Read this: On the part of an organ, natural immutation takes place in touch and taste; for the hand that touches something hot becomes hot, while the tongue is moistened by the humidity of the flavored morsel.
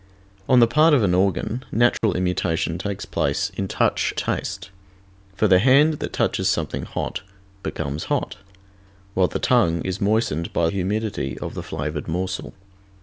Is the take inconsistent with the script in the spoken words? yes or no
yes